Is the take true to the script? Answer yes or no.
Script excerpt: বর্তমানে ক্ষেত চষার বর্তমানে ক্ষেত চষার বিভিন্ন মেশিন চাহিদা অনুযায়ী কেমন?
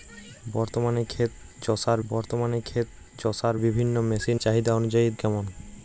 yes